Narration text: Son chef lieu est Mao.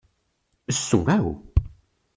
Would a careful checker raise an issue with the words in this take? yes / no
yes